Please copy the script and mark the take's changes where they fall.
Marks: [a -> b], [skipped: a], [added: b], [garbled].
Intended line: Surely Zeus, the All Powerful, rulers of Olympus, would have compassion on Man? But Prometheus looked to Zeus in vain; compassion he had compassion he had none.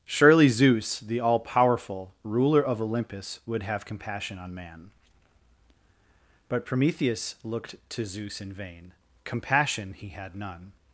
Surely Zeus, the All Powerful, [rulers -> ruler] of Olympus, would have compassion on Man? But Prometheus looked to Zeus in vain; compassion he had [skipped: compassion he had] none.